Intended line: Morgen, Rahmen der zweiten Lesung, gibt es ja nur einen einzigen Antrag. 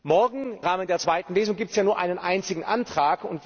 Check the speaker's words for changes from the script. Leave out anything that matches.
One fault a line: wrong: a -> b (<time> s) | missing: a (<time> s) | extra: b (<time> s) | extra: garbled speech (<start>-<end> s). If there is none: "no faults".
no faults